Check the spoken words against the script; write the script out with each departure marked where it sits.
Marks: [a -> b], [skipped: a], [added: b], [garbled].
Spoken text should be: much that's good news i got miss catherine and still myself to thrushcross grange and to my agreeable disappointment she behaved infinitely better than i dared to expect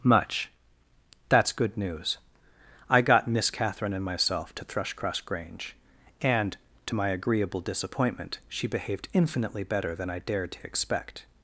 much that's good news i got miss catherine and [skipped: still] myself to thrushcross grange and to my agreeable disappointment she behaved infinitely better than i dared to expect